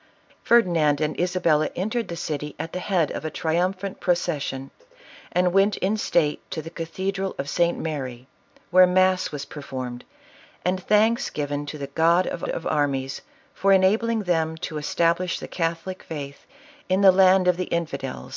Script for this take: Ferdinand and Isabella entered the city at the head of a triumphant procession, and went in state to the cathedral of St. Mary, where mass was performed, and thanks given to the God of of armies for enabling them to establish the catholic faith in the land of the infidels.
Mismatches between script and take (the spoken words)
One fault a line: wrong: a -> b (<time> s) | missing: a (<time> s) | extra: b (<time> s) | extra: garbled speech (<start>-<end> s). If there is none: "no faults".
no faults